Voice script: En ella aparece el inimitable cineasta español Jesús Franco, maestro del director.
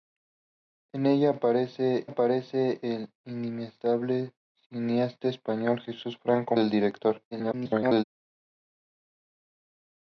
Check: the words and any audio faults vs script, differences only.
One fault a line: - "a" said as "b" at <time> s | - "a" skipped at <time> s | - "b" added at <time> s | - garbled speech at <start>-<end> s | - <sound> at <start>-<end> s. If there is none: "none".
- "aparece" added at 2.0 s
- "maestro" skipped at 6.6 s
- garbled speech at 7.3-8.0 s